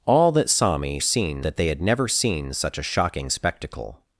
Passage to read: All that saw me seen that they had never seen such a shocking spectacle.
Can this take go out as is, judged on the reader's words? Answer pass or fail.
pass